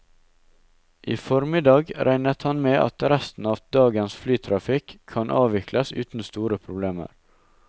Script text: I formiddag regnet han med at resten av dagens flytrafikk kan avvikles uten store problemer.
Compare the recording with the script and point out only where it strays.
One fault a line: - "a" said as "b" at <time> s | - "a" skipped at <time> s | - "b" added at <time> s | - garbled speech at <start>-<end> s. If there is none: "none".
none